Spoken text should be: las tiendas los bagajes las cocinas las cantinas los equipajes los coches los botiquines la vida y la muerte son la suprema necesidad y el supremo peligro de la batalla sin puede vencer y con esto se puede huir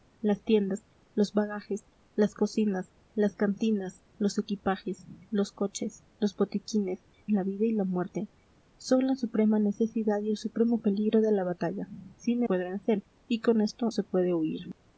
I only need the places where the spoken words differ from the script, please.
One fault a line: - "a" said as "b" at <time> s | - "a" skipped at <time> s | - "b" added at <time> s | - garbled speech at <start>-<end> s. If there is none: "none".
none